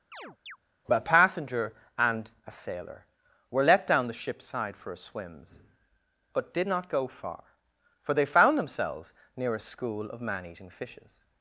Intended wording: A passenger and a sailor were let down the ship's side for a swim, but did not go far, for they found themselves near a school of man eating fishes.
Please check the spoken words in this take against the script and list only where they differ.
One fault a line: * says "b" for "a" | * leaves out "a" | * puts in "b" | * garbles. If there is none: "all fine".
* says "swims" for "swim"